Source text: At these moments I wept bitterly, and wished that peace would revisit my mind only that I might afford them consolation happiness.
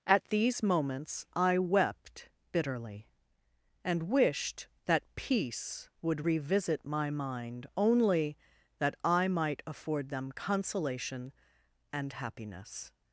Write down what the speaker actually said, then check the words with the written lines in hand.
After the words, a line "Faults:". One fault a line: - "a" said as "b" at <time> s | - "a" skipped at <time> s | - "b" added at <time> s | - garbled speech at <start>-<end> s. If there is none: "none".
At these moments I wept bitterly, and wished that peace would revisit my mind only that I might afford them consolation and happiness.
Faults:
- "and" added at 11.9 s